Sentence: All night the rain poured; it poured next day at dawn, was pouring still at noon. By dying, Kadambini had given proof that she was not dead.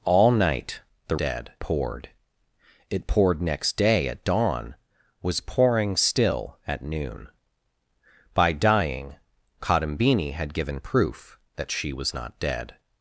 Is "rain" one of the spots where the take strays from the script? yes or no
yes